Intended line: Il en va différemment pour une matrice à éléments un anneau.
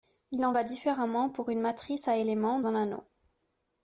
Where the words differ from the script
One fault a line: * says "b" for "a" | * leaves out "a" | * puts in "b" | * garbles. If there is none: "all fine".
all fine